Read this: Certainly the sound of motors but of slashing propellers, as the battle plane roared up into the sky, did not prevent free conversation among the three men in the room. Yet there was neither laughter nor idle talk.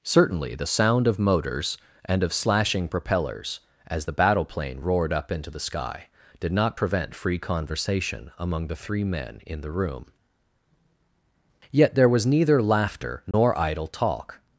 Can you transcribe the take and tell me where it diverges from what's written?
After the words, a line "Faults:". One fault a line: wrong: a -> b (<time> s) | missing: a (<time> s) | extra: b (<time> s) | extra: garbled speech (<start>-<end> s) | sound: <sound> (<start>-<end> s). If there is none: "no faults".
Certainly the sound of motors and of slashing propellers, as the battle plane roared up into the sky, did not prevent free conversation among the three men in the room. Yet there was neither laughter nor idle talk.
Faults:
wrong: but -> and (2.0 s)
sound: dropout (13.3-13.3 s)